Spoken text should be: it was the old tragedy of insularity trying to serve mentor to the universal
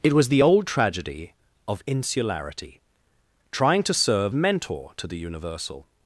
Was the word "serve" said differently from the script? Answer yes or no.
no